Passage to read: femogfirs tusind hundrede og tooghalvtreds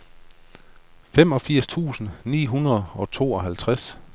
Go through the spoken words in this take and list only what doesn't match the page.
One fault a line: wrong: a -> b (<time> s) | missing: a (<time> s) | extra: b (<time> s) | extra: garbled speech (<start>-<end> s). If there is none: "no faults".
extra: ni (2.2 s)